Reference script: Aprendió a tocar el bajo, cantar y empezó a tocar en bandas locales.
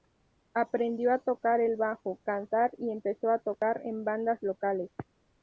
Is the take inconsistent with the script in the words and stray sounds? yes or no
no